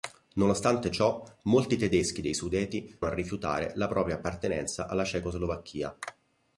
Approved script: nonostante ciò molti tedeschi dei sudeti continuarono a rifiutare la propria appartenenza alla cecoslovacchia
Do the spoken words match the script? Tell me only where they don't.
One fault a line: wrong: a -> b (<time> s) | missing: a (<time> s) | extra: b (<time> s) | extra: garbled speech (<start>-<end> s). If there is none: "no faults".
missing: continuarono (3.0 s)